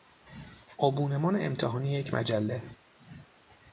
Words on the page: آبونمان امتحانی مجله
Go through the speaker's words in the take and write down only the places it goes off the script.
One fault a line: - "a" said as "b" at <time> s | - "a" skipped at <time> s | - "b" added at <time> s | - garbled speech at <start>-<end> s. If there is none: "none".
- "یک" added at 1.9 s